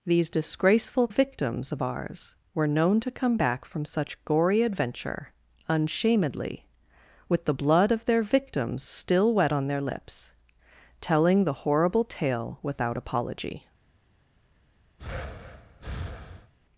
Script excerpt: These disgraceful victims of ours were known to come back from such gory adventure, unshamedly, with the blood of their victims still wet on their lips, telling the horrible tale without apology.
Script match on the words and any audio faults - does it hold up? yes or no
no